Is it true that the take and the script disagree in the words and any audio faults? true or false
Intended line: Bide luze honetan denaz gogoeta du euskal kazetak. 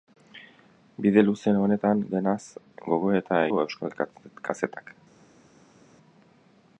false